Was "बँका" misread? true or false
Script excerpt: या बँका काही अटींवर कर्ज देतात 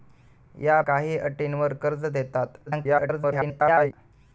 true